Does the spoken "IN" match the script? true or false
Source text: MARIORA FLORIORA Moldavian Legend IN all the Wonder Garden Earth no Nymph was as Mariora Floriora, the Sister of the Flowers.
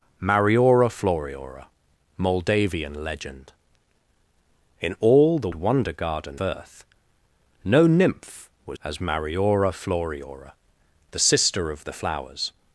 true